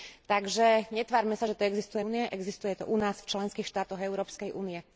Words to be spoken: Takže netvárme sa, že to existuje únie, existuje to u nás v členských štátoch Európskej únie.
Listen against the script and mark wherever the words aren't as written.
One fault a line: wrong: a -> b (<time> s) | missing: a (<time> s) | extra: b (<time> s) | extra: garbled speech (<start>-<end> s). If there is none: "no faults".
no faults